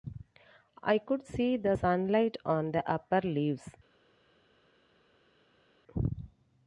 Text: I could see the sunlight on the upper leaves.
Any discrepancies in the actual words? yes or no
no